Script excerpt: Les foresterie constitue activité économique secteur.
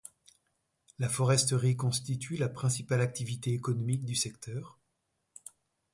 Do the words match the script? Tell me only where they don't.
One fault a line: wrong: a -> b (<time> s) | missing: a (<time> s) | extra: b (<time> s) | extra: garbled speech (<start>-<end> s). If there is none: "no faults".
wrong: Les -> La (1.0 s)
extra: la principale (2.4 s)
extra: du (4.0 s)